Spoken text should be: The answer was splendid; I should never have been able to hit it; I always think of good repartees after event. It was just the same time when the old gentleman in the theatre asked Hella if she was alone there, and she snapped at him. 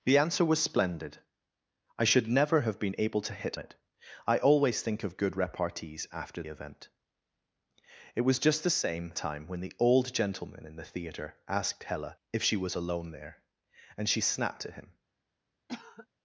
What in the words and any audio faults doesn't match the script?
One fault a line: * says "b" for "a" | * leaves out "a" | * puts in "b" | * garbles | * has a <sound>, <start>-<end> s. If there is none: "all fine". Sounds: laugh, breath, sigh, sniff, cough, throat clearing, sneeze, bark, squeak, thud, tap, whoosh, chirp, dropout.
* has a cough, 15.7-16.1 s